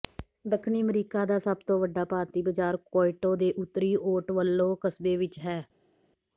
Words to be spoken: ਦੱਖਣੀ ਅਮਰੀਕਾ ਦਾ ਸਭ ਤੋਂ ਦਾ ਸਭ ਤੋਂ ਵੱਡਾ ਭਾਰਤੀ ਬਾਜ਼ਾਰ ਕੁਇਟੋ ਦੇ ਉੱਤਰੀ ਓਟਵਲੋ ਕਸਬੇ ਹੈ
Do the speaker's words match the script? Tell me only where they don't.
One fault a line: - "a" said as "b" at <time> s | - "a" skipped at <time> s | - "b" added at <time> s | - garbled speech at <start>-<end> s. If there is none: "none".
- "ਦਾ ਸਭ ਤੋਂ" skipped at 1.8 s
- "ਵਿੱਚ" added at 5.2 s